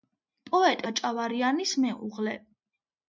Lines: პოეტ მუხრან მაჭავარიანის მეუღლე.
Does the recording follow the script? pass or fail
fail